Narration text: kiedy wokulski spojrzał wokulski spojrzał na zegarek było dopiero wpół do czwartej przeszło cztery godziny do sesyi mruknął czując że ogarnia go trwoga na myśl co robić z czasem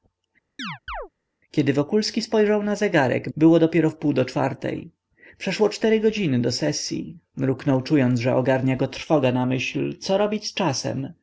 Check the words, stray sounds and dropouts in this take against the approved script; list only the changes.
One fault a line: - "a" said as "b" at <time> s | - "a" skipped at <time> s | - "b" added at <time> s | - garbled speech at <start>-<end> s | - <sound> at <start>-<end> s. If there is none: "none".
- chirp at 0.6-1.1 s
- "wokulski spojrzał" skipped at 2.6 s